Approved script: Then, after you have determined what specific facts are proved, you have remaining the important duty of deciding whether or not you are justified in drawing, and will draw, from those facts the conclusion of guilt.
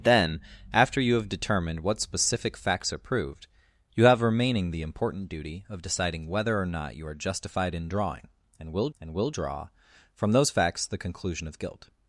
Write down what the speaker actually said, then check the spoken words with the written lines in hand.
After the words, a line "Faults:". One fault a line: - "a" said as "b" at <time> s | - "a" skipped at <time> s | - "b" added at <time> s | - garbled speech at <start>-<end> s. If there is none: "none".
Then, after you have determined what specific facts are proved, you have remaining the important duty of deciding whether or not you are justified in drawing, and will and will draw, from those facts the conclusion of guilt.
Faults:
- "and will" added at 9.0 s